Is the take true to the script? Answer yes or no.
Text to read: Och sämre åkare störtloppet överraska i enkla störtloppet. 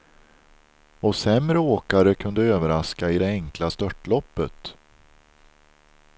no